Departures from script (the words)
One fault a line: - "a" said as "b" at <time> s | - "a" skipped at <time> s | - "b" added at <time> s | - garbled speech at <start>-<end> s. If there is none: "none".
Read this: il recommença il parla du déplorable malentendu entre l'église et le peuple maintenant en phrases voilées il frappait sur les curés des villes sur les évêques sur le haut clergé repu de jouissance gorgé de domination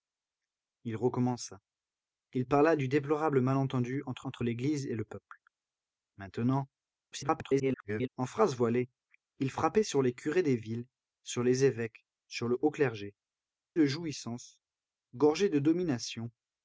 - "entre" added at 4.2 s
- garbled speech at 7.1-8.1 s
- "repu" skipped at 13.1 s